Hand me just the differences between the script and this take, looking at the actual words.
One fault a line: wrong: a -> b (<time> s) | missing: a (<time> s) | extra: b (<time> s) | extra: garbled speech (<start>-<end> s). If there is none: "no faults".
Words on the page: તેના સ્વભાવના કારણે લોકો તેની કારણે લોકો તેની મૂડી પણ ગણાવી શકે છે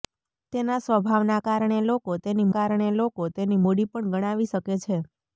no faults